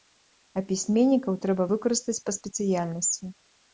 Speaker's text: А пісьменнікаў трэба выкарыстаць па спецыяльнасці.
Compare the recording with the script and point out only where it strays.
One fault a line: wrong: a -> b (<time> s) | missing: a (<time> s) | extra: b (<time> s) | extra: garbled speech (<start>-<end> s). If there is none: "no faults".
no faults